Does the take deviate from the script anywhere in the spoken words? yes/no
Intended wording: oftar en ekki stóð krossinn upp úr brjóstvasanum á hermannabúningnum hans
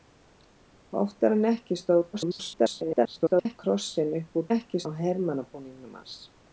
yes